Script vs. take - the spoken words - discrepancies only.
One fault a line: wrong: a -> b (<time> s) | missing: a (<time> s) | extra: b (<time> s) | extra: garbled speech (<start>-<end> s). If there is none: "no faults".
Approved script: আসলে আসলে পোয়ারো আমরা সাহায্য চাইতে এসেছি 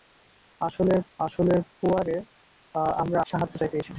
no faults